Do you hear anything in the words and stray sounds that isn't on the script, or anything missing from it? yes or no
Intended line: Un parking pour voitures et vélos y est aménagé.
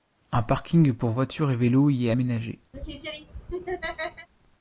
yes